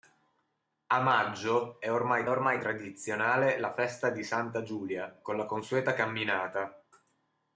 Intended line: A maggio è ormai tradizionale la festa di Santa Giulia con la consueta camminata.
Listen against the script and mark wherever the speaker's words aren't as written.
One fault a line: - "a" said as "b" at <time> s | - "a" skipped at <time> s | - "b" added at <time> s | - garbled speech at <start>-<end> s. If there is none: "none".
- "ormai" added at 2.3 s